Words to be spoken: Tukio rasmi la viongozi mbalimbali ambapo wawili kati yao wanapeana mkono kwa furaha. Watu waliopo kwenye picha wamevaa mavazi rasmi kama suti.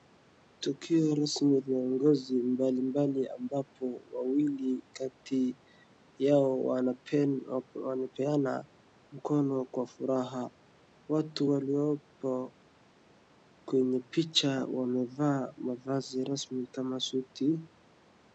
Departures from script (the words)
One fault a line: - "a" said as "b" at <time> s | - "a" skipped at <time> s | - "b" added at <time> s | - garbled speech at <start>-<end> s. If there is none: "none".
- "la" skipped at 1.6 s